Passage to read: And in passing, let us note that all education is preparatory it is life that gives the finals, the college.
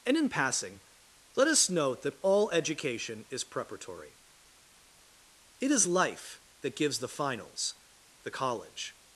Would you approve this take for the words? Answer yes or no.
yes